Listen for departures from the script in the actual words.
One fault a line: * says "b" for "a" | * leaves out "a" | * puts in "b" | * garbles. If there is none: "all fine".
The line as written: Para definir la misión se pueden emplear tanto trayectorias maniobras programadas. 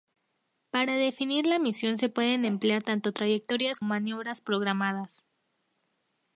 all fine